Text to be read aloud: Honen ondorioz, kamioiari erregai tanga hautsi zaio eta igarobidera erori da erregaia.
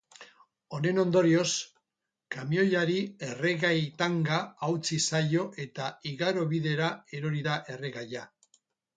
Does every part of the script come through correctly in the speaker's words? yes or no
yes